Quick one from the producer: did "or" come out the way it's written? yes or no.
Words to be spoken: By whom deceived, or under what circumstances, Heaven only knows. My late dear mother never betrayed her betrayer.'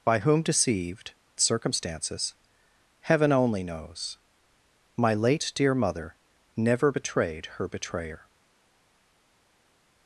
no